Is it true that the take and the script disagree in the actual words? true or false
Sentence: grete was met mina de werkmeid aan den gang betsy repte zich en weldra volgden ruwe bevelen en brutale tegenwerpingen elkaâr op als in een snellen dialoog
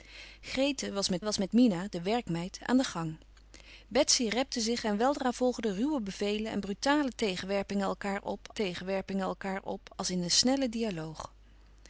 true